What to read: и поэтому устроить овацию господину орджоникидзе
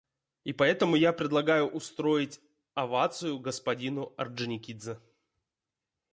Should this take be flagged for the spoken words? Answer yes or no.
yes